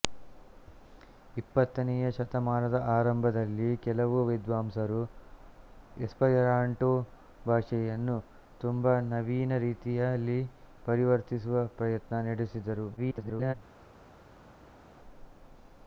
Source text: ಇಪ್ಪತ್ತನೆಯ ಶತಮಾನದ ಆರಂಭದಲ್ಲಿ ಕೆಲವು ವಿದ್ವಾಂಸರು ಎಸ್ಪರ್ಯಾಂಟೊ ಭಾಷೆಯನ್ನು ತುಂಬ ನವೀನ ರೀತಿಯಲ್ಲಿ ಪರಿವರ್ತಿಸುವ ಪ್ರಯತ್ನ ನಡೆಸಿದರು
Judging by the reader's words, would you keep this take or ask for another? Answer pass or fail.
fail